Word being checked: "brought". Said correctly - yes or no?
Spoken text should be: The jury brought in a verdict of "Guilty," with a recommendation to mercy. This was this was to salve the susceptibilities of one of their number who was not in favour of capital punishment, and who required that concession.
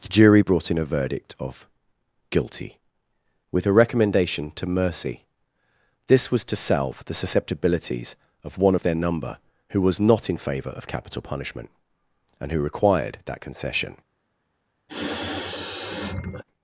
yes